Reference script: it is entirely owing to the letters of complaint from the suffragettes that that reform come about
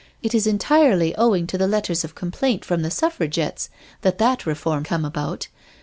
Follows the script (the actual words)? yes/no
yes